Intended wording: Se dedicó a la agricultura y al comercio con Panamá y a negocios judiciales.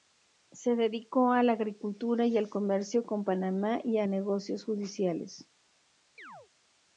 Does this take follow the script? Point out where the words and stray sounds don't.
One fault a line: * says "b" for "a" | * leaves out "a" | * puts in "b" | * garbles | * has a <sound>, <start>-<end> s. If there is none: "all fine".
* has a chirp, 6.2-6.5 s